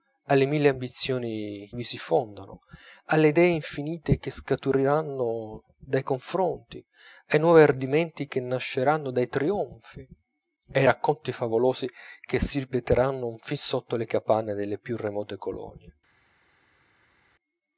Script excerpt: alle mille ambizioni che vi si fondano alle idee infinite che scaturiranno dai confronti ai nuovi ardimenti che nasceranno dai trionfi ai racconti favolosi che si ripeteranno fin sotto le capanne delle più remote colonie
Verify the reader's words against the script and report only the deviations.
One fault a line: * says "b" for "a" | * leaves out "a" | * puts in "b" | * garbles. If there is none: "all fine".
* leaves out "che"